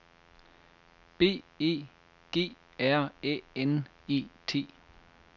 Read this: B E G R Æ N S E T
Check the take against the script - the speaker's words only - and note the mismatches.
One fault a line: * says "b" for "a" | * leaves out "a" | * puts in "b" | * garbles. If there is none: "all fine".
* leaves out "S"